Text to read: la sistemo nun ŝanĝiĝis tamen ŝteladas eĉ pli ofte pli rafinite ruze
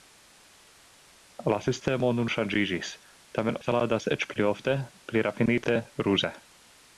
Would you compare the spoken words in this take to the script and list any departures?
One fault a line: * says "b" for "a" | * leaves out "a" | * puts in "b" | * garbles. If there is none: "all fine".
all fine